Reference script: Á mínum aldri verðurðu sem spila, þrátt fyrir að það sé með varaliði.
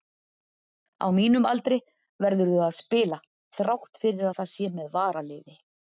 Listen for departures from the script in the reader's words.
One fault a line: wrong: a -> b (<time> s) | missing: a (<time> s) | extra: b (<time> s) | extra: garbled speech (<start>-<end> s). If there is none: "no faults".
wrong: sem -> að (2.7 s)